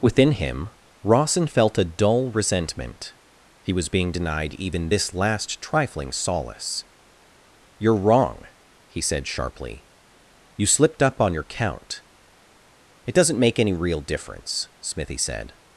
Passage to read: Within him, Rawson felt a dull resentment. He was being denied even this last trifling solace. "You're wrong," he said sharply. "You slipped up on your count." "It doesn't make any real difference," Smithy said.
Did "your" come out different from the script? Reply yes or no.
no